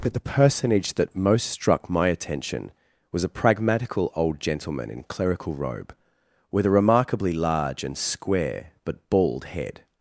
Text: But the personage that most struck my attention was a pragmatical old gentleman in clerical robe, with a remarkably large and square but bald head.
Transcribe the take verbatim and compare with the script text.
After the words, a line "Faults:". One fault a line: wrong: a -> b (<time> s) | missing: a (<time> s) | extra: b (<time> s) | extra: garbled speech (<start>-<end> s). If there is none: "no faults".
But the personage that most struck my attention was a pragmatical old gentleman in clerical robe, with a remarkably large and square but bald head.
Faults:
no faults